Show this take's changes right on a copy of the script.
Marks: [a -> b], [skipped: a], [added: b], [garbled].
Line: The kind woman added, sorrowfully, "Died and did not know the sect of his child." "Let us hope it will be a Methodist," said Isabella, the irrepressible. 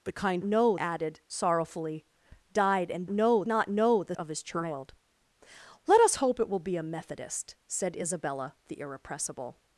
The kind [woman -> know] added, sorrowfully, "Died and [did -> know] not know the [skipped: sect] of his child." "Let us hope it will be a Methodist," said Isabella, the irrepressible.